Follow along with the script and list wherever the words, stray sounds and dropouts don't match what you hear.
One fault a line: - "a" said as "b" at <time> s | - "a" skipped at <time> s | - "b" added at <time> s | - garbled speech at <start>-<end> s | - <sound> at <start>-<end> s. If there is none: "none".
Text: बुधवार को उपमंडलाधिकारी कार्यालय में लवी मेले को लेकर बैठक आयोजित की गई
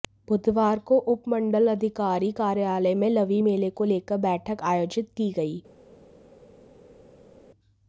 none